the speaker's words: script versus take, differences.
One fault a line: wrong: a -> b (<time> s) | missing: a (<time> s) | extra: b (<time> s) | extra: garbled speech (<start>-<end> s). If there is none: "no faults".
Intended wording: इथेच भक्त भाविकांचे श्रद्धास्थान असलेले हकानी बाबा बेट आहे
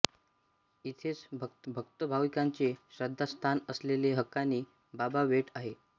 extra: भक्त (1.7 s)